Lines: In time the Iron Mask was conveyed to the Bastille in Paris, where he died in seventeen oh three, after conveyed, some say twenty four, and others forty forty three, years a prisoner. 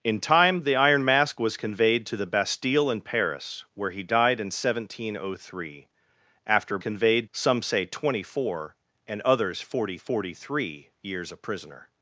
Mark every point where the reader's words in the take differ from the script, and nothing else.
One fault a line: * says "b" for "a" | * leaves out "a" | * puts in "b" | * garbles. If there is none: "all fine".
all fine